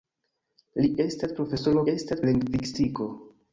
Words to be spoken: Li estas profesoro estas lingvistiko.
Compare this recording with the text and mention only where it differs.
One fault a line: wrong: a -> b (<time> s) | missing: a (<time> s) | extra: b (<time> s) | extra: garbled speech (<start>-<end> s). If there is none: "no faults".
no faults